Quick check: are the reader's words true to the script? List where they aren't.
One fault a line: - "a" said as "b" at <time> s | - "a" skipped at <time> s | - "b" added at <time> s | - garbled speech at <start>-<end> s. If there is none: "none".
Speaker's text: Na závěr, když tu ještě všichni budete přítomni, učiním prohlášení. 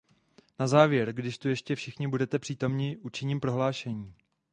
none